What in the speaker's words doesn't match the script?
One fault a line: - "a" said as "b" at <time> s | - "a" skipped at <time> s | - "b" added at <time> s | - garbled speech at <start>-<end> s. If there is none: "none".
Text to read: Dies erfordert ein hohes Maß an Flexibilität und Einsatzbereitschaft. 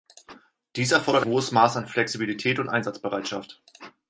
- "ein" skipped at 1.2 s